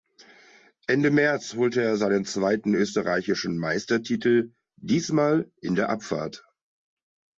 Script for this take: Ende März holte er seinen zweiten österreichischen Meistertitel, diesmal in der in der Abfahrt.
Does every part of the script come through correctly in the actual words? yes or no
no